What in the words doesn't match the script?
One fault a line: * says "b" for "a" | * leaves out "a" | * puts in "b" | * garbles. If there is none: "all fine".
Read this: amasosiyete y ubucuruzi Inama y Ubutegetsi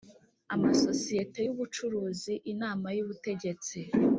all fine